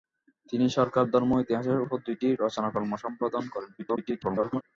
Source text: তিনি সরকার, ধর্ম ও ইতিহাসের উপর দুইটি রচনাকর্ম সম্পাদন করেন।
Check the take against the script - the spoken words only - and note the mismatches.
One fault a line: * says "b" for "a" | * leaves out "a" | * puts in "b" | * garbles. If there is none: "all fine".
* garbles